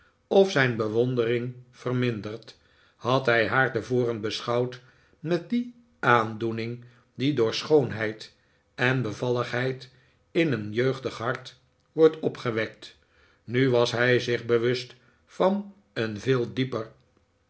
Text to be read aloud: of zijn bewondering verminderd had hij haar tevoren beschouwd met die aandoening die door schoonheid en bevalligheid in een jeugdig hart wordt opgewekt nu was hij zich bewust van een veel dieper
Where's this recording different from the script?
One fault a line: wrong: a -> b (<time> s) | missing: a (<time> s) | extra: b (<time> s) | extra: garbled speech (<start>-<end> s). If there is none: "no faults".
no faults